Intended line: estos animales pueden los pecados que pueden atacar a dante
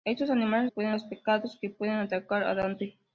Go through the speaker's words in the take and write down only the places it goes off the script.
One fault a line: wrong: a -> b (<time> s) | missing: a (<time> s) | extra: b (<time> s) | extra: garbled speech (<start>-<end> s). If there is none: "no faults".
no faults